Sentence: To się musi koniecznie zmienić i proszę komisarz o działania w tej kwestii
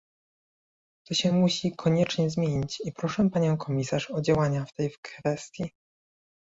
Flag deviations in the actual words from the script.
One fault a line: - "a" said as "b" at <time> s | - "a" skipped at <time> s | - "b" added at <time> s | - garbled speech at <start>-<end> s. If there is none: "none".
- "panią" added at 3.3 s